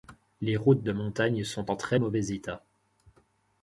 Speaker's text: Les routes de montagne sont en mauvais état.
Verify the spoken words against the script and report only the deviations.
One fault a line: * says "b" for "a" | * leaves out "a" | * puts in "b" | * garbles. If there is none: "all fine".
* puts in "très"